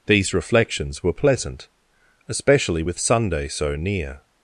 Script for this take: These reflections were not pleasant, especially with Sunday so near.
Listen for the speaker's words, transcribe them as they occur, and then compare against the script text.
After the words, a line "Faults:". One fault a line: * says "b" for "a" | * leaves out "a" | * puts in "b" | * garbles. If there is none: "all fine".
These reflections were pleasant, especially with Sunday so near.
Faults:
* leaves out "not"